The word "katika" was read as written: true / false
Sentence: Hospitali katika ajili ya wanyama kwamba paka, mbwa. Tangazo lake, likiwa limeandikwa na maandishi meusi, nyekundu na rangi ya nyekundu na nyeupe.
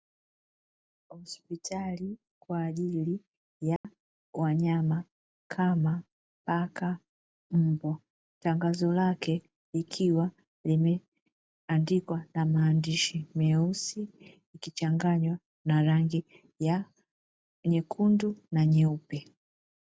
false